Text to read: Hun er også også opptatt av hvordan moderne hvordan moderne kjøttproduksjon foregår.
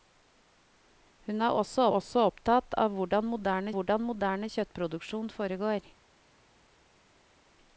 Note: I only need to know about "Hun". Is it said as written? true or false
true